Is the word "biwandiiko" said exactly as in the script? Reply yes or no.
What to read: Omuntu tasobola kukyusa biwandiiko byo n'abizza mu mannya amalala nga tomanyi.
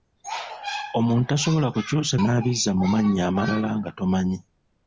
no